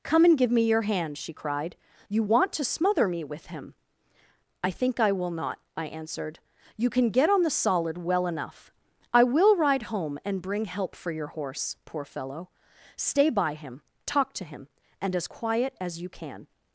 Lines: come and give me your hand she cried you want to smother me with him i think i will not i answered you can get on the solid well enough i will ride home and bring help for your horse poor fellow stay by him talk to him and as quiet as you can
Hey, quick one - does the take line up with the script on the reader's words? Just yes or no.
yes